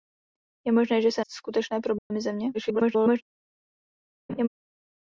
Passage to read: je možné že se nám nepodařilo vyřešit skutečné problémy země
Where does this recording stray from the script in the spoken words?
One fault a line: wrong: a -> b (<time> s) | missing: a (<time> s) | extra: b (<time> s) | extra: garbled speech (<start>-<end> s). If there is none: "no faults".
missing: nám nepodařilo vyřešit (1.2 s)
extra: garbled speech (2.5-3.2 s)